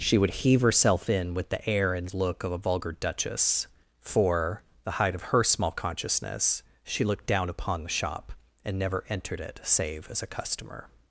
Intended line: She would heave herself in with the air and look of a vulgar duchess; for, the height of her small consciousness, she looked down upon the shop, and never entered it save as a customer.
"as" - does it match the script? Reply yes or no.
yes